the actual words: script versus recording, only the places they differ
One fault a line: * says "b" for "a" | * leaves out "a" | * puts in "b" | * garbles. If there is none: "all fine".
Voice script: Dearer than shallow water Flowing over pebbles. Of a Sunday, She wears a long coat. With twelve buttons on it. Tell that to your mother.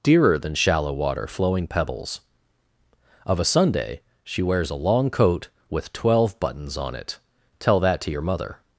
* leaves out "over"